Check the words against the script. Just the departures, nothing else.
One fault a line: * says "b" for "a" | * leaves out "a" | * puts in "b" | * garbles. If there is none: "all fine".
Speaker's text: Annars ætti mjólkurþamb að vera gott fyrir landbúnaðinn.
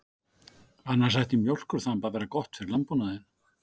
all fine